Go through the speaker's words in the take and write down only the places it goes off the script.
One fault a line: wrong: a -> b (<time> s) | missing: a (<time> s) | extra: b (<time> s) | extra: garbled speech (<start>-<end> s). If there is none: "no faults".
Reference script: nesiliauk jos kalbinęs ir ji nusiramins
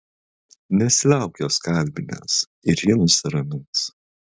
no faults